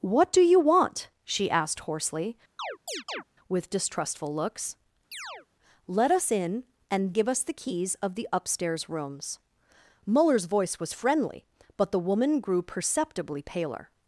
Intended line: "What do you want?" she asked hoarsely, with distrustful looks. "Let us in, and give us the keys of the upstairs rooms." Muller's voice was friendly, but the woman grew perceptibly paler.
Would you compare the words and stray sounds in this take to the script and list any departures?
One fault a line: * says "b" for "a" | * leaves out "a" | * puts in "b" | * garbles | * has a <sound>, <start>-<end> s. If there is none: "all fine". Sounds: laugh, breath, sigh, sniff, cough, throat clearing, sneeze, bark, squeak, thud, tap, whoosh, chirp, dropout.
* has a chirp, 2.6-3.2 s
* has a chirp, 5.1-5.5 s